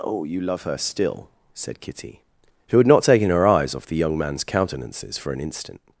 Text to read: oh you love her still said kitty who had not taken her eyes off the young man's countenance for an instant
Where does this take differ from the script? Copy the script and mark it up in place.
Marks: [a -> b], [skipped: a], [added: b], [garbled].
oh you love her still said kitty who had not taken her eyes off the young man's [countenance -> countenances] for an instant